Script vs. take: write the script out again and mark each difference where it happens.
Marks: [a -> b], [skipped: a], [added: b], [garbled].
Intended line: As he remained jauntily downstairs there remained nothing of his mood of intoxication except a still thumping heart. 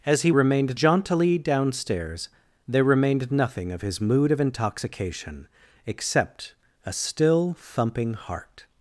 As he remained jauntily downstairs there remained nothing of his mood of intoxication except a still thumping heart.